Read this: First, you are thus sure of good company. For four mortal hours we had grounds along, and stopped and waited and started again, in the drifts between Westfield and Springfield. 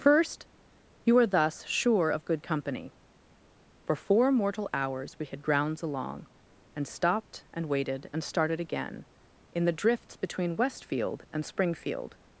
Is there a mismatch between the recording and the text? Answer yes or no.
no